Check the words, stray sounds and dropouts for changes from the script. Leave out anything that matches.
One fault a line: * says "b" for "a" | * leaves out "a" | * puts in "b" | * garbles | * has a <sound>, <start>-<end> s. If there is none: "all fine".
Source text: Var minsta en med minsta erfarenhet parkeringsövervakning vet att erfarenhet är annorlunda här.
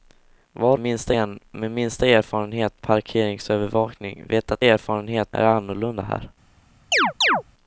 * has a chirp, 6.9-7.4 s